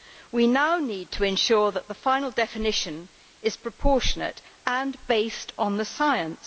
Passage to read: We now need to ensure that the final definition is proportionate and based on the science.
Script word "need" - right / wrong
right